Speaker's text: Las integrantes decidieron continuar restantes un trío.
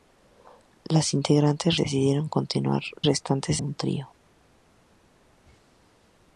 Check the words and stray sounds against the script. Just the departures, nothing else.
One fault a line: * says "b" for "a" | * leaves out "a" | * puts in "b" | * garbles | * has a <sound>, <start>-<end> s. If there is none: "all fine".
all fine